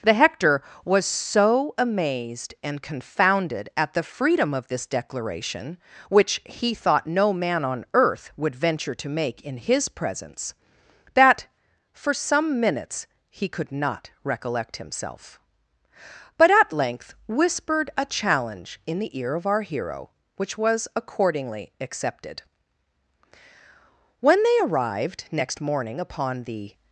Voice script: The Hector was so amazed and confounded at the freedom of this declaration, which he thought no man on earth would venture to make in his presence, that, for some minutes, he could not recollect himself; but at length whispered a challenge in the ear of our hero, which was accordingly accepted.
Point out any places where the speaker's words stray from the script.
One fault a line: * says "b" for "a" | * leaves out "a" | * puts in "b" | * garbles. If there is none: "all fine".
* puts in "When they arrived next morning upon the"